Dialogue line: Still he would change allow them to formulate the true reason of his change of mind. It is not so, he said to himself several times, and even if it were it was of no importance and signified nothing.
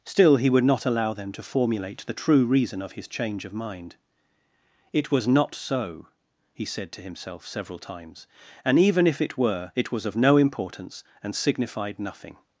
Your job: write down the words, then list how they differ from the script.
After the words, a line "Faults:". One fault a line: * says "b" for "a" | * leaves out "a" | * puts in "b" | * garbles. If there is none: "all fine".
Still he would not allow them to formulate the true reason of his change of mind. It was not so, he said to himself several times, and even if it were it was of no importance and signified nothing.
Faults:
* says "not" for "change"
* says "was" for "is"